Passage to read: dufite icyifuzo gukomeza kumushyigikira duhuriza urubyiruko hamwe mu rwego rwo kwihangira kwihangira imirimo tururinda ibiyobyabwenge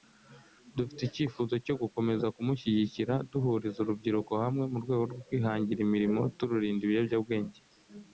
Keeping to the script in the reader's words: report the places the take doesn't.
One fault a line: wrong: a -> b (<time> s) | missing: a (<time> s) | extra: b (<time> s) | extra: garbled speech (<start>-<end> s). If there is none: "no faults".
extra: cyo (1.6 s)
missing: kwihangira (5.8 s)